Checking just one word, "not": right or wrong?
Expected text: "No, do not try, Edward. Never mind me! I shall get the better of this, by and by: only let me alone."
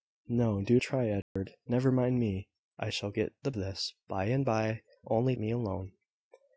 wrong